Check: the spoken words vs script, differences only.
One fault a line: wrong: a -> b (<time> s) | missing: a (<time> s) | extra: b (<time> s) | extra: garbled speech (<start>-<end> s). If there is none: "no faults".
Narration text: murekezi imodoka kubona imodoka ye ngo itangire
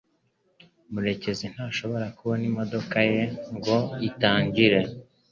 wrong: imodoka -> ntashobora (1.5 s)